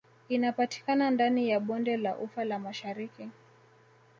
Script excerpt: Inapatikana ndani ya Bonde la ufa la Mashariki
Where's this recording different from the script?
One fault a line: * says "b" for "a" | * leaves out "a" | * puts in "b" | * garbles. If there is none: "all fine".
all fine